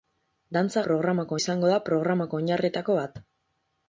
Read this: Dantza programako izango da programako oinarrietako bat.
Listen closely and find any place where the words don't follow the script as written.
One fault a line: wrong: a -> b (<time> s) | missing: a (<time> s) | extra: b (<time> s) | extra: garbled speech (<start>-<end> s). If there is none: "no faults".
no faults